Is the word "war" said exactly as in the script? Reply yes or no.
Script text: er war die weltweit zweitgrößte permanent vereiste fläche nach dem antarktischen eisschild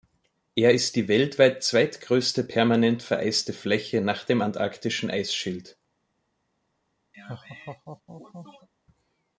no